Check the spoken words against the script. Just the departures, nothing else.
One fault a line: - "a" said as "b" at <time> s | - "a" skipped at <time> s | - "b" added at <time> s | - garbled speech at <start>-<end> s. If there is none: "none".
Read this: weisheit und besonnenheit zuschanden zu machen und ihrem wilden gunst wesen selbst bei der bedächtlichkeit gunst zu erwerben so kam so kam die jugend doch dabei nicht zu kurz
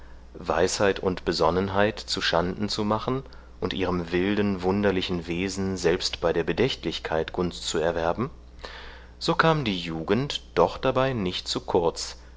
- "gunst" said as "wunderlichen" at 4.6 s
- "so kam" skipped at 9.6 s